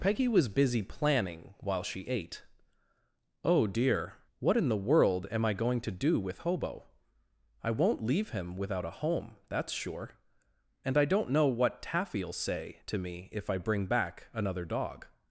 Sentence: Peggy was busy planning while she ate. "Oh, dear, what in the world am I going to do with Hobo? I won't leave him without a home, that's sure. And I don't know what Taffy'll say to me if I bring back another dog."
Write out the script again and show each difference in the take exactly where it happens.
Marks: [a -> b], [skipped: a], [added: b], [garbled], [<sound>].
Peggy was busy planning while she ate. "Oh, dear, what in the world am I going to do with Hobo? I won't leave him without a home, that's sure. And I don't know what Taffy'll say to me if I bring back another dog."